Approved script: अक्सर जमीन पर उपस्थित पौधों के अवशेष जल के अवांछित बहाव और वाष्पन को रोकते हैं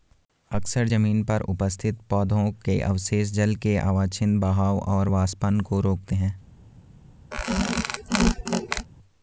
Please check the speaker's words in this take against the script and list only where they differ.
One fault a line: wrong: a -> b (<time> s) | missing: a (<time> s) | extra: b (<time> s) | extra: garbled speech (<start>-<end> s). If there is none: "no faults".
no faults